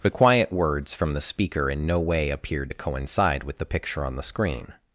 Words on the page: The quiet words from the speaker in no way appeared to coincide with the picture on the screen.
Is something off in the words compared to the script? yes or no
no